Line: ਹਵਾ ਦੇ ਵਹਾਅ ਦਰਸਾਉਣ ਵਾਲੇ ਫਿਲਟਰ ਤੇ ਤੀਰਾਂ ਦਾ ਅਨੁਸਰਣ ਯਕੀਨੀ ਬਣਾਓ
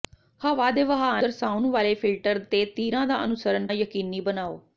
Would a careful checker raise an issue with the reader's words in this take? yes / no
no